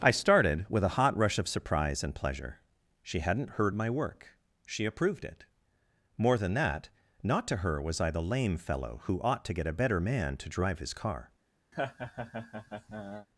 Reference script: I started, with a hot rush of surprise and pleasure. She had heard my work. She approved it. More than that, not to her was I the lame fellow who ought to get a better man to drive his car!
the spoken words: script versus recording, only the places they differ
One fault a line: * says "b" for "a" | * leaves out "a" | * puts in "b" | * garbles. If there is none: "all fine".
* says "hadn't" for "had"